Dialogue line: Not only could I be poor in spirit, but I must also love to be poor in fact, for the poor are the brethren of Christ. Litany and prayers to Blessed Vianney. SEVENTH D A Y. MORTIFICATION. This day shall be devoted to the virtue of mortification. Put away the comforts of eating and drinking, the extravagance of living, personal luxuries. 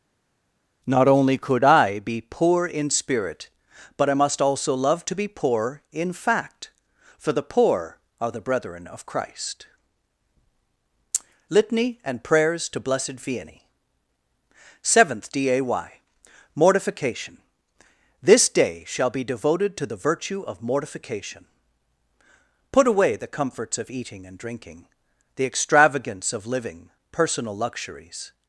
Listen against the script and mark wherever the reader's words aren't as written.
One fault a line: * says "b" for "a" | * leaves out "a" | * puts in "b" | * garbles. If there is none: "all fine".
all fine